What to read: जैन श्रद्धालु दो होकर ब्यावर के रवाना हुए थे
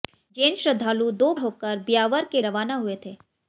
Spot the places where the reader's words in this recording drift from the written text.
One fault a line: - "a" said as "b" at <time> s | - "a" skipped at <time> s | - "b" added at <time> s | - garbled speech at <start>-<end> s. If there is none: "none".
none